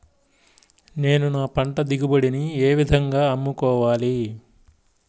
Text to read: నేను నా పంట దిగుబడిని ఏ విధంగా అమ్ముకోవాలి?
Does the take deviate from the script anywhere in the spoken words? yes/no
no